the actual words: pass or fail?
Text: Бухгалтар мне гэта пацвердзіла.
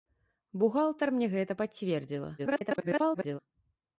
fail